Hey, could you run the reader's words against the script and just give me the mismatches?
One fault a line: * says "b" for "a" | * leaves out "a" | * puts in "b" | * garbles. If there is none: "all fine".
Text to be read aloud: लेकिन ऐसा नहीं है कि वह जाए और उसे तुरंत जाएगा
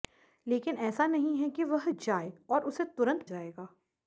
all fine